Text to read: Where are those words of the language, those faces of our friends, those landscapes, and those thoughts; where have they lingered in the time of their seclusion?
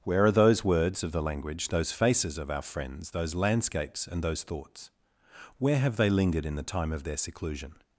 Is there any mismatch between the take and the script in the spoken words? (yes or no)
no